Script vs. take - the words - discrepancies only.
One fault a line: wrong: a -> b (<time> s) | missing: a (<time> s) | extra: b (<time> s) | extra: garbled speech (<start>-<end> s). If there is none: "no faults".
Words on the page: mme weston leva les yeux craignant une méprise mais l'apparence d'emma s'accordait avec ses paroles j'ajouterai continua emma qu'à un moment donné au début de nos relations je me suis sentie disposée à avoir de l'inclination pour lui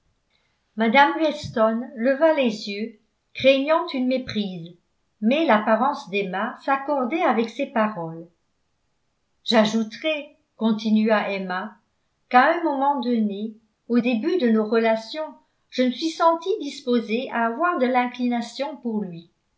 no faults